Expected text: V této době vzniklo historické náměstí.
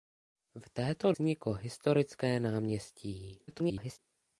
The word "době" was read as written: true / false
false